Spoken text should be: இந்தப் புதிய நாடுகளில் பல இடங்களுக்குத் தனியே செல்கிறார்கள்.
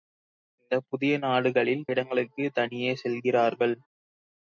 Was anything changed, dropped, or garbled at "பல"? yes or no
yes